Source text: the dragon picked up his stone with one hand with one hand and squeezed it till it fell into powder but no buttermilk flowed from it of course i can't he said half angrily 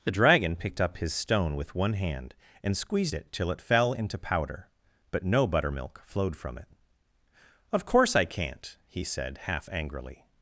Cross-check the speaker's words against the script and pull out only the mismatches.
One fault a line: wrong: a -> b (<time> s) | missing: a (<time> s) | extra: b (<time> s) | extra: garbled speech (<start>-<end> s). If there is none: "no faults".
missing: with one hand (2.3 s)